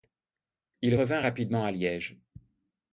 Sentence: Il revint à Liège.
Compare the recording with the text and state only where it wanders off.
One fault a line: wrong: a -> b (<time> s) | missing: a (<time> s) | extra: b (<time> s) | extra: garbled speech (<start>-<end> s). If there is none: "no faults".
extra: rapidement (1.2 s)